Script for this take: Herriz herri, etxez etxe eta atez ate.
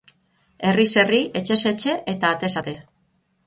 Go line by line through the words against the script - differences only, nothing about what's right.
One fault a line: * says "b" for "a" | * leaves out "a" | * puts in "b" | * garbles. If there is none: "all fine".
all fine